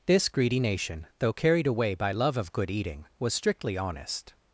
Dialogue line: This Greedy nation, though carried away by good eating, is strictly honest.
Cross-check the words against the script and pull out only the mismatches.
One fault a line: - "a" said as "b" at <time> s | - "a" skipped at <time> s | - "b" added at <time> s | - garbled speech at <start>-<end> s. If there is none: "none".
- "love of" added at 2.1 s
- "is" said as "was" at 3.2 s